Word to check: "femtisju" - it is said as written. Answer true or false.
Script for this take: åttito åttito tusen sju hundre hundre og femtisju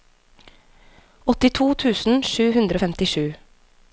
true